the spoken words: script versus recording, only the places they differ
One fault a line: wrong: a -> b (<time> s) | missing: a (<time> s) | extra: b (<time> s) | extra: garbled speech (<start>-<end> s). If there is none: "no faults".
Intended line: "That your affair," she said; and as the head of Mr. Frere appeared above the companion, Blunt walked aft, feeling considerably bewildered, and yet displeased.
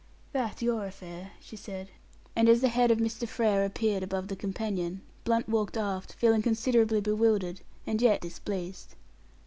no faults